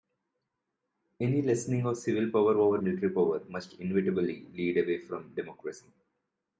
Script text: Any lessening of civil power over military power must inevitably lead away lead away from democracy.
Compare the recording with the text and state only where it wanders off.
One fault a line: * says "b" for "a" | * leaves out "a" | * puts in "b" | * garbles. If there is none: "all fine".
* leaves out "lead away"